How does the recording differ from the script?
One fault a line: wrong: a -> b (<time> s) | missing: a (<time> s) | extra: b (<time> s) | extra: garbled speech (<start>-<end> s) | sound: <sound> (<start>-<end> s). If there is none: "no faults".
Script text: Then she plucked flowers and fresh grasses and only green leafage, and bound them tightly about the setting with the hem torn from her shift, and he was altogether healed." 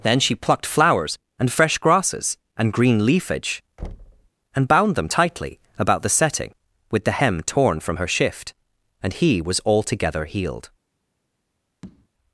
missing: only (2.7 s)
sound: thud (3.8-4.3 s)
sound: tap (11.8-12.1 s)